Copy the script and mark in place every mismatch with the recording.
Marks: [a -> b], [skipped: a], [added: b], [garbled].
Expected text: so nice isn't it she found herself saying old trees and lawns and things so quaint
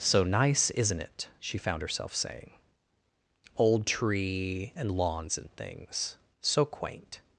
so nice isn't it she found herself saying old [trees -> tree] and lawns and things so quaint